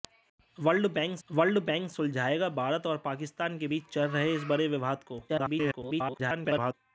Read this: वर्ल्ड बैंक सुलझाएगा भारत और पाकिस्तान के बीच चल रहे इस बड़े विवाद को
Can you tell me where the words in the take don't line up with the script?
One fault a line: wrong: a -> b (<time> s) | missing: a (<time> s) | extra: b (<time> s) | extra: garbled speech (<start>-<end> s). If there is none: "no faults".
extra: वर्ल्ड बैंक (1.3 s)
extra: garbled speech (5.3-6.7 s)